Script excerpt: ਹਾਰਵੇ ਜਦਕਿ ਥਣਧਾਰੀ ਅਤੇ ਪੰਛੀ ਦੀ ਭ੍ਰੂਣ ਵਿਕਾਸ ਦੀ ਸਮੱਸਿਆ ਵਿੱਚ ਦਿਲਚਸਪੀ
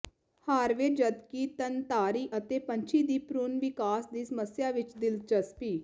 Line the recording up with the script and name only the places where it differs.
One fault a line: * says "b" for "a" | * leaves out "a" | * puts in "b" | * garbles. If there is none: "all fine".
all fine